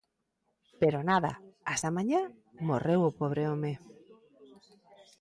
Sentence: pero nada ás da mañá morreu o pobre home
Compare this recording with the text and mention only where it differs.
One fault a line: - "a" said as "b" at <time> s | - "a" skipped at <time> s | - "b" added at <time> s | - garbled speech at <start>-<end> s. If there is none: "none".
none